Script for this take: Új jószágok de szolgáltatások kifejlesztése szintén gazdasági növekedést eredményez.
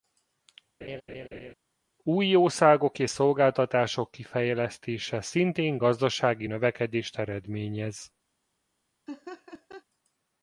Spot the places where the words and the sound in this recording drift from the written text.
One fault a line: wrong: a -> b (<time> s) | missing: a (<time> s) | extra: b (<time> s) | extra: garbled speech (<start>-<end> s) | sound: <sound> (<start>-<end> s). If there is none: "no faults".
sound: laugh (0.8-1.5 s)
wrong: de -> és (3.0 s)
sound: laugh (9.1-9.8 s)